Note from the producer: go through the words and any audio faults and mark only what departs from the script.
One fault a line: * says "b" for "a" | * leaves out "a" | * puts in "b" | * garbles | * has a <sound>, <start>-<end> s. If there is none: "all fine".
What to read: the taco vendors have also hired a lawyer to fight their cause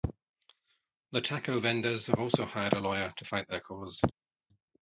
all fine